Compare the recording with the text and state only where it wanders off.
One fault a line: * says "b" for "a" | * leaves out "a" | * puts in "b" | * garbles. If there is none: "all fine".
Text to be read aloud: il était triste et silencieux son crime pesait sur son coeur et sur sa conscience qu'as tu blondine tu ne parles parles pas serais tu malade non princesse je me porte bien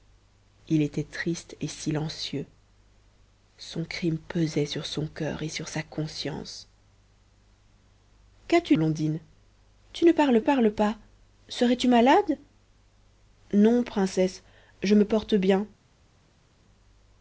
all fine